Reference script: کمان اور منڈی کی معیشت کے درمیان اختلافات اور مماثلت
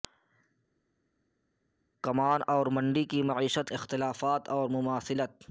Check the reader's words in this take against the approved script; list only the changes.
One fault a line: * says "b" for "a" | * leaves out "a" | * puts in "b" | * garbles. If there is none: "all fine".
* leaves out "کے درمیان"